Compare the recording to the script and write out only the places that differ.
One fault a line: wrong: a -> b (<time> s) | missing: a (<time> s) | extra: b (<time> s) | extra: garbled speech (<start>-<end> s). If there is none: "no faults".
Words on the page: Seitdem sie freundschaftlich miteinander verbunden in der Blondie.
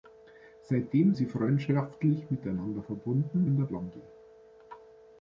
no faults